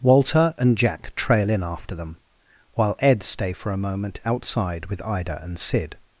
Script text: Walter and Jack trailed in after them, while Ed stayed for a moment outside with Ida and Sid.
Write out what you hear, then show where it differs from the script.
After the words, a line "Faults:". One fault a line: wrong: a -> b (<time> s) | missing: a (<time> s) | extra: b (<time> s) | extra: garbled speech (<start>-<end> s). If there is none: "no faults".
Walter and Jack trail in after them, while Ed stay for a moment outside with Ida and Sid.
Faults:
wrong: trailed -> trail (1.1 s)
wrong: stayed -> stay (3.2 s)